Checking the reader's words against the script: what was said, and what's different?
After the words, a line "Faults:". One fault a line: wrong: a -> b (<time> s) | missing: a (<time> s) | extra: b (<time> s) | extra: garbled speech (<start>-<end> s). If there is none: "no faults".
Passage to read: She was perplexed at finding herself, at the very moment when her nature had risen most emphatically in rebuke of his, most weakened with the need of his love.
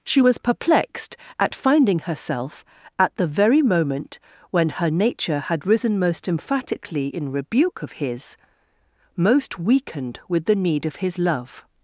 She was perplexed at finding herself, at the very moment when her nature had risen most emphatically in rebuke of his, most weakened with the need of his love.
Faults:
no faults